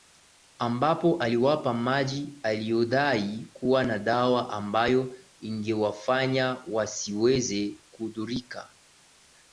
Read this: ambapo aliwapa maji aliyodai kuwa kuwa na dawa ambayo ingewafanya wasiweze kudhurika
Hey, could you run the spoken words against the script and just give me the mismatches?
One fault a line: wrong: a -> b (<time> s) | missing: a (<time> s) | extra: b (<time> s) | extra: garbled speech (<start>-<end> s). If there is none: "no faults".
missing: kuwa (3.8 s)